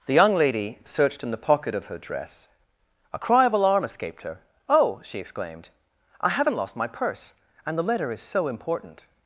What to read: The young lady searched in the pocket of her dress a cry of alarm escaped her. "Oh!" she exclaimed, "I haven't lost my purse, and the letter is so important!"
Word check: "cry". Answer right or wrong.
right